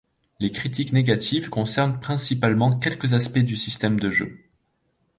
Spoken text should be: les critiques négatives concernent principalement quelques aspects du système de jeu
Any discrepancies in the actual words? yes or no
no